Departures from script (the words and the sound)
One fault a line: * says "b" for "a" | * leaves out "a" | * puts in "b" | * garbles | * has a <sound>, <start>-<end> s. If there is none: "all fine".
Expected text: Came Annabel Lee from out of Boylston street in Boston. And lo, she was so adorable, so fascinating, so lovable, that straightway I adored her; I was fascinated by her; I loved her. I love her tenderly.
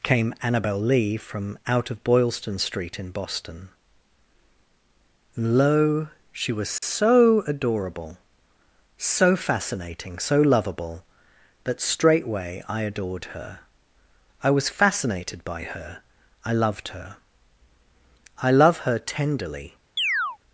* leaves out "And"
* has a dropout, 6.8-6.8 s
* has a chirp, 20.0-20.4 s